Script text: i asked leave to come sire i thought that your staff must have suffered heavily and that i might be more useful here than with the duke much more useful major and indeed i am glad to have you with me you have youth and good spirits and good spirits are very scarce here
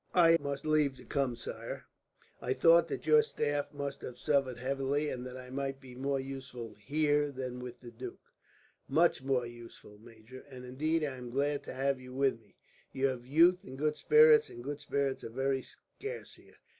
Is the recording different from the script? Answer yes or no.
yes